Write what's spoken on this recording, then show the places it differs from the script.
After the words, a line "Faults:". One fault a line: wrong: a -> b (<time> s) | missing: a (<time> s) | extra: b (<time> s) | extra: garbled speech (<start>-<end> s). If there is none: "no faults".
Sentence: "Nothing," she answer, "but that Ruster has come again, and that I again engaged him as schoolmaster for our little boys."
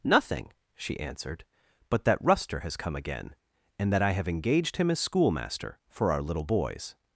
"Nothing," she answered, "but that Ruster has come again, and that I have engaged him as schoolmaster for our little boys."
Faults:
wrong: answer -> answered (1.0 s)
wrong: again -> have (4.1 s)